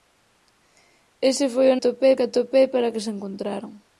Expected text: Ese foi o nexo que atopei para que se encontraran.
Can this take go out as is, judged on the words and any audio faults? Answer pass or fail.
fail